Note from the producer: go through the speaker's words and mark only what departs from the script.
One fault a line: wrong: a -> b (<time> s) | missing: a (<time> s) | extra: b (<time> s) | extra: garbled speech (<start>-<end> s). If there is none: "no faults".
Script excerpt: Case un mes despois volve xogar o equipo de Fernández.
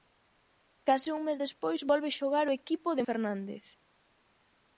no faults